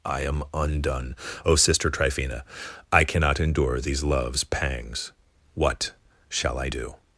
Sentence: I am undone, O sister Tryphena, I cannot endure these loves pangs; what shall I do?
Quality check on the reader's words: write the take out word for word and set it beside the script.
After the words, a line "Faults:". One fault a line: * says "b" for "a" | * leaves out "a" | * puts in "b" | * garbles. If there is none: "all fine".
I am undone, O sister Tryphena, I cannot endure these loves pangs; what shall I do?
Faults:
all fine